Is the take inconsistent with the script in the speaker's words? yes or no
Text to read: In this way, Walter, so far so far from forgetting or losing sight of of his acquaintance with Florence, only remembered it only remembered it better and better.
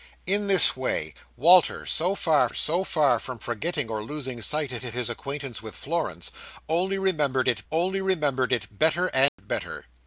no